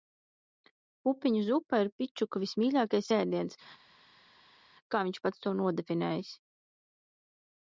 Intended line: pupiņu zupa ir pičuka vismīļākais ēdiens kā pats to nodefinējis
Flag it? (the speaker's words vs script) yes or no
yes